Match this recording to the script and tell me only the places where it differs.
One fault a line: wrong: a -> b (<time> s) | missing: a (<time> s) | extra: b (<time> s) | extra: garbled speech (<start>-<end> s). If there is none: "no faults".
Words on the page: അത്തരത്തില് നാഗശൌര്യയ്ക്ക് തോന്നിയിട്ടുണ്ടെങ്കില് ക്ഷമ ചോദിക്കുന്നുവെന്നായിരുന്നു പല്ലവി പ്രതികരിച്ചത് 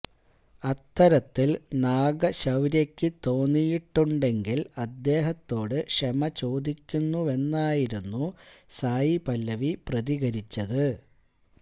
extra: അദ്ദേഹത്തോട് (4.8 s)
extra: സായി (8.8 s)